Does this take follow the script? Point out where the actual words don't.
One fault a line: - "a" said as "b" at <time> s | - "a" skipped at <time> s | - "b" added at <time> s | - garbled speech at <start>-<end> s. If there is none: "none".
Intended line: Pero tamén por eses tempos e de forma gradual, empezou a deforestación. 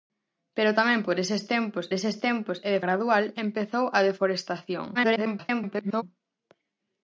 - "eses tempos" added at 2.0 s
- "forma" skipped at 2.8 s
- garbled speech at 4.9-6.0 s